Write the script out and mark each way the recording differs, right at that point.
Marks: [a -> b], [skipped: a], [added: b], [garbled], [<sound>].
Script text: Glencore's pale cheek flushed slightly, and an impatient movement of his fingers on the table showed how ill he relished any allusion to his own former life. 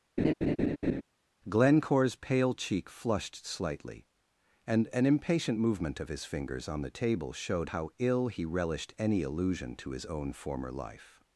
[laugh] Glencore's pale cheek flushed slightly, and an impatient movement of his fingers on the table showed how ill he relished any allusion to his own former life.